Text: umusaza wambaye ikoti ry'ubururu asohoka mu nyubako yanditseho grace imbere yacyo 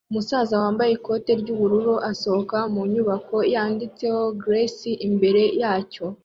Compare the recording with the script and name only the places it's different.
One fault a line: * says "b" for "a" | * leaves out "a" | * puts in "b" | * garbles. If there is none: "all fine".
all fine